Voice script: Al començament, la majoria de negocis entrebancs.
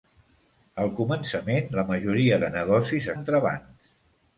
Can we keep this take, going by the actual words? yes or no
yes